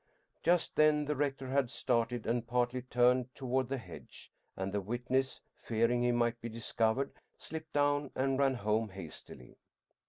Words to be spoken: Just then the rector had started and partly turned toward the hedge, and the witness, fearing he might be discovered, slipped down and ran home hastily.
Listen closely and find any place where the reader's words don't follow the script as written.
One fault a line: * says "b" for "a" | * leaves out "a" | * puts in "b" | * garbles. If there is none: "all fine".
all fine